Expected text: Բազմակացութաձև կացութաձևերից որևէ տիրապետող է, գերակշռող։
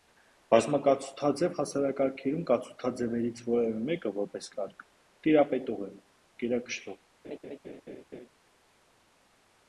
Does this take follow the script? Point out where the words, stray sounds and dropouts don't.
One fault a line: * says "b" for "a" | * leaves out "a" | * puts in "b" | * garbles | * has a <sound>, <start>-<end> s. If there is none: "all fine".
* puts in "հասարակարգերում"
* puts in "մեկը որպես կարգ"
* has a laugh, 7.2-8.3 s